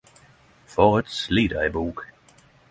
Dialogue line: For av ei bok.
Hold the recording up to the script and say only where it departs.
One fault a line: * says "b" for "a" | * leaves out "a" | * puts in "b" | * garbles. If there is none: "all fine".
* puts in "eit slit"